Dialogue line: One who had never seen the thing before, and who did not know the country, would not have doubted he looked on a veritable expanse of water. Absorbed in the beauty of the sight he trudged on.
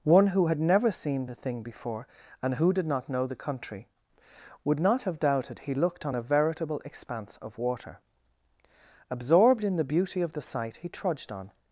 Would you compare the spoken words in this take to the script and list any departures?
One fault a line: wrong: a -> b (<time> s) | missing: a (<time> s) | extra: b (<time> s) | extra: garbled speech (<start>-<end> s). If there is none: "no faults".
no faults